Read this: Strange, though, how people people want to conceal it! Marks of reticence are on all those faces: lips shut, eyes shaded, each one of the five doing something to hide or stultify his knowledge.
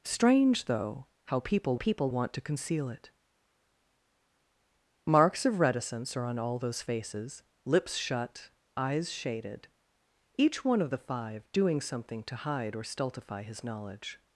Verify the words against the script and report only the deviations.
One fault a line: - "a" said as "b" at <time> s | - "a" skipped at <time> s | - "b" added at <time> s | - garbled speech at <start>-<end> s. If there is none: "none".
none